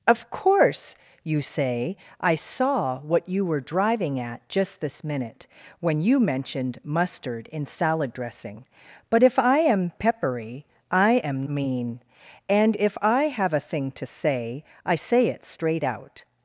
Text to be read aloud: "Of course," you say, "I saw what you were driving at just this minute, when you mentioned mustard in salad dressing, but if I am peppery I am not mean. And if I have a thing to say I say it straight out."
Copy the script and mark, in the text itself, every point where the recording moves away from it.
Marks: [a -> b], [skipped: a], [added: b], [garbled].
"Of course," you say, "I saw what you were driving at just this minute, when you mentioned mustard in salad dressing, but if I am peppery I am [skipped: not] mean. And if I have a thing to say I say it straight out."